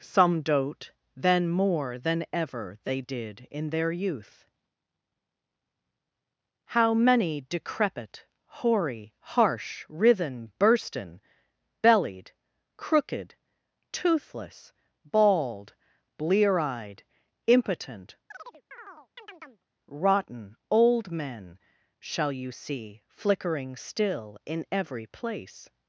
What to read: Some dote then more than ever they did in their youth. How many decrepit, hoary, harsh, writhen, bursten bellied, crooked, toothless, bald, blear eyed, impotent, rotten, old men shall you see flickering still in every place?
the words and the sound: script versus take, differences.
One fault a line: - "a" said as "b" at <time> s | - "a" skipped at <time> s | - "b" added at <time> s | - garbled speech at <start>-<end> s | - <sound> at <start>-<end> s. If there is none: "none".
- chirp at 18.3-19.6 s